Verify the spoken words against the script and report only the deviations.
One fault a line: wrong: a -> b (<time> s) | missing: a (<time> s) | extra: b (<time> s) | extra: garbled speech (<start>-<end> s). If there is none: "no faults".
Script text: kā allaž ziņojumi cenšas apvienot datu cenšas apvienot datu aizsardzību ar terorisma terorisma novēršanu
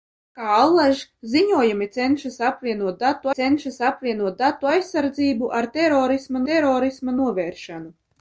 no faults